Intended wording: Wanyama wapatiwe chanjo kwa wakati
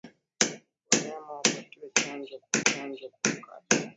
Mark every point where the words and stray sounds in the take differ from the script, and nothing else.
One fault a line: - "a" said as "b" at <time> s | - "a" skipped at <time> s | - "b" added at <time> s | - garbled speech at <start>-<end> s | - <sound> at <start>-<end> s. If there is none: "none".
- "chanjo kwa" added at 2.7 s